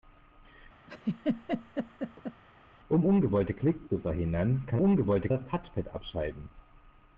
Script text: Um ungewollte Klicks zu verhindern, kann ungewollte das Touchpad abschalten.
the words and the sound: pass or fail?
fail